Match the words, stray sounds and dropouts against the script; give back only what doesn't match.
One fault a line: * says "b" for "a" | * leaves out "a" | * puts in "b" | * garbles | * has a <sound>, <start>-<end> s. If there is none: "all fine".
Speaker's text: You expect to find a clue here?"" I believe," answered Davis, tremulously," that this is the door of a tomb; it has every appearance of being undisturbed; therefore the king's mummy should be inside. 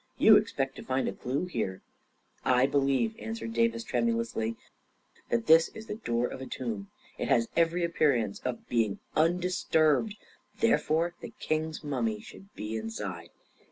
all fine